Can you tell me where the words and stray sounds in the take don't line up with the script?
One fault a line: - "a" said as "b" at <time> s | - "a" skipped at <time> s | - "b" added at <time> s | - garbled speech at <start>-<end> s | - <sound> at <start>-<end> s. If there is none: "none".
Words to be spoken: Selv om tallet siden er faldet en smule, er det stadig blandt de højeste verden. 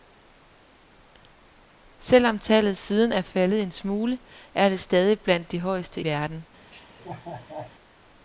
- laugh at 6.7-7.8 s